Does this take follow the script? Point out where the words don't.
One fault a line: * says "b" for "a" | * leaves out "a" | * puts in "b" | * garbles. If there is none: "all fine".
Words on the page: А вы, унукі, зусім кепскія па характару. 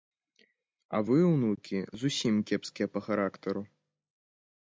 all fine